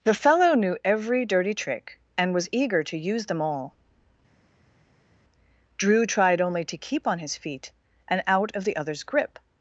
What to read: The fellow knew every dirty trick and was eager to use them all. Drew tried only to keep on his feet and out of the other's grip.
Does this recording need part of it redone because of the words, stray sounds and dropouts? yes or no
no